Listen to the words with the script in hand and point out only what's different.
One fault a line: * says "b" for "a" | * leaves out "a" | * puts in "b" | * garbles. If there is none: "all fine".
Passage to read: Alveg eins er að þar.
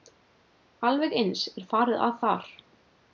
* puts in "farið"